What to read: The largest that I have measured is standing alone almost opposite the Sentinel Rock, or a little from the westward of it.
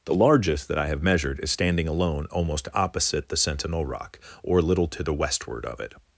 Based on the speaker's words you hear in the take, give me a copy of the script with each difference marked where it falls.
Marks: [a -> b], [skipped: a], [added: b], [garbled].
The largest that I have measured is standing alone almost opposite the Sentinel Rock, or a little [from -> to] the westward of it.